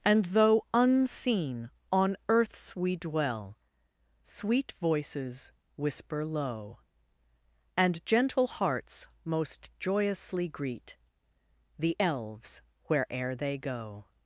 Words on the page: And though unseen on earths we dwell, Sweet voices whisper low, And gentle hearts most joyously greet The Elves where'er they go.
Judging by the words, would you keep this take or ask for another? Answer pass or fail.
pass